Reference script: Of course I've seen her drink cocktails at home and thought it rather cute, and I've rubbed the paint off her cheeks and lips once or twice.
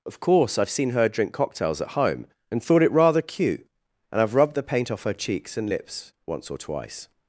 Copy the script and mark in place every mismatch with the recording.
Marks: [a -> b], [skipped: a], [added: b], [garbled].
Of course I've seen her drink cocktails at home and thought it rather cute, and I've rubbed the paint off her cheeks and lips once or twice.